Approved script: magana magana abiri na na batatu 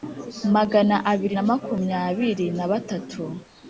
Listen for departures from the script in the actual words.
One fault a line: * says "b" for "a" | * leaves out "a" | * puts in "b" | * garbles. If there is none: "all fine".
* leaves out "magana"
* puts in "makumyabiri"